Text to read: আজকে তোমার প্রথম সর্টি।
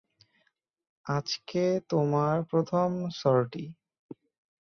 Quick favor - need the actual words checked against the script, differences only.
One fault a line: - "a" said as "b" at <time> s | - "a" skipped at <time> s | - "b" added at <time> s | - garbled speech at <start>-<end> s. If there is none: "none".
none